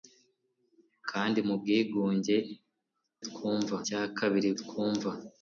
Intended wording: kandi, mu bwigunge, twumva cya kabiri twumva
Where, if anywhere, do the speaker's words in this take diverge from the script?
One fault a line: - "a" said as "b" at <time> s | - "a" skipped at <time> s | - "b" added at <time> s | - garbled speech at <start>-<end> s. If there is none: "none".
none